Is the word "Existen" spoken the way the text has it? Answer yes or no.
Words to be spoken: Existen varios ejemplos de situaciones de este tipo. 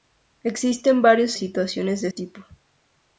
yes